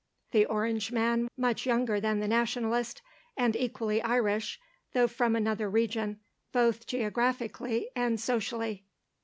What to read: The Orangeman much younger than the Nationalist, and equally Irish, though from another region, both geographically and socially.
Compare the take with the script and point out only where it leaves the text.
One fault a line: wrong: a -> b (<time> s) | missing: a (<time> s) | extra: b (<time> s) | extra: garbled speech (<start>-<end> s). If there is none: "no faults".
no faults